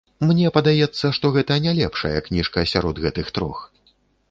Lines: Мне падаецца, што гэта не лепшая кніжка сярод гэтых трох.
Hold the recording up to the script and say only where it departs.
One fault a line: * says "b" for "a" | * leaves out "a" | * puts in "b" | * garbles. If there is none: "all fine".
all fine